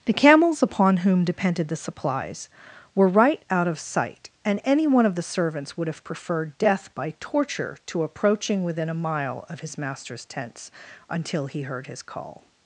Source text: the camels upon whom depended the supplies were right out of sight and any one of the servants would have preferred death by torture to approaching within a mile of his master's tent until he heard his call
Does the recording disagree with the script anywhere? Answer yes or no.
yes